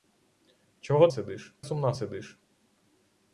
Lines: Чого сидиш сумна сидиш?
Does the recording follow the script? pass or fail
pass